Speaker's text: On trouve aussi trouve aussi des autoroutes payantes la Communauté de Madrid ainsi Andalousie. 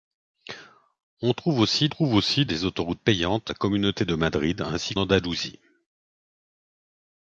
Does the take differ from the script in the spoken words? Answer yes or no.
no